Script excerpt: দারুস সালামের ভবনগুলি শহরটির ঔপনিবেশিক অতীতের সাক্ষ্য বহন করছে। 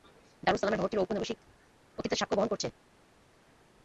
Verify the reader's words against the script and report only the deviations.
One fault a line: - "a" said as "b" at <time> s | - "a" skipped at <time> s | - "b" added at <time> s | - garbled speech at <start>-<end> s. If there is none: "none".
- "ভবনগুলি" skipped at 0.8 s